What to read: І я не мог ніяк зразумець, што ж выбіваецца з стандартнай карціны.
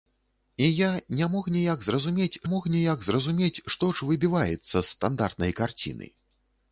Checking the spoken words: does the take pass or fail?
fail